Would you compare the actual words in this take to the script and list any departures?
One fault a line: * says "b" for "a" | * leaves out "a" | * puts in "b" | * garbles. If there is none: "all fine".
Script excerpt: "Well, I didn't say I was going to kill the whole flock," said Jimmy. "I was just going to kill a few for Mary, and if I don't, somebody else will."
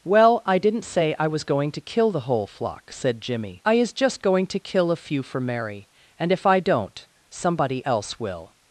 * says "is" for "was"